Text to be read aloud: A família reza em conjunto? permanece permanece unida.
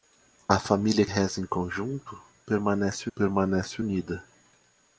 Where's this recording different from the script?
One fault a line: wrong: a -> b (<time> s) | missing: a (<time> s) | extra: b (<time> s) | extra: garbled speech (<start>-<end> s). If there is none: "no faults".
no faults